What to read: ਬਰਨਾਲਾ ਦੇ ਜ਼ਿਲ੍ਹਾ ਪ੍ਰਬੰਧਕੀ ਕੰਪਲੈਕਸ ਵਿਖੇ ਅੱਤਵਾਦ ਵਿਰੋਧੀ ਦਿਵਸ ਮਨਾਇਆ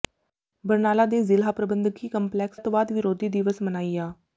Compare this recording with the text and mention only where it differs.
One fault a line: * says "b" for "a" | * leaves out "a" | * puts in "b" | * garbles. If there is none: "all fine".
* leaves out "ਵਿਖੇ"